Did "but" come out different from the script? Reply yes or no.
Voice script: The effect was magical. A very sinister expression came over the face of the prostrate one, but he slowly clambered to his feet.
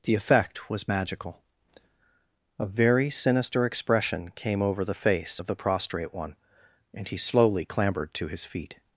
yes